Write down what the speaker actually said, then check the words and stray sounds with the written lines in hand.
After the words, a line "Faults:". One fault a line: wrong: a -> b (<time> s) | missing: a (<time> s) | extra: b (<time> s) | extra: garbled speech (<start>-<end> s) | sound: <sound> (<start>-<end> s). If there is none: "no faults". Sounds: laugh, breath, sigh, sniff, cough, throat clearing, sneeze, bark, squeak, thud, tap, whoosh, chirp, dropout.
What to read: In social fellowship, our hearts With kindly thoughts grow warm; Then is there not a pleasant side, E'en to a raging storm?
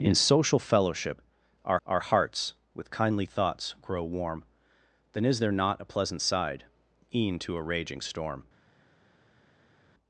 In social fellowship, our our hearts With kindly thoughts grow warm; Then is there not a pleasant side, E'en to a raging storm?
Faults:
extra: our (1.8 s)